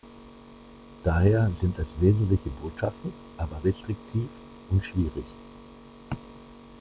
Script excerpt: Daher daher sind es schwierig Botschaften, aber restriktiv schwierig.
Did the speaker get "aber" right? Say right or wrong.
right